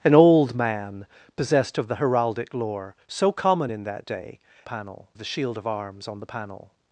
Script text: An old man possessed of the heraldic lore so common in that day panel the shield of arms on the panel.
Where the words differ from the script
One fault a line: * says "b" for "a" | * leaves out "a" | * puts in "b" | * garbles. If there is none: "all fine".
all fine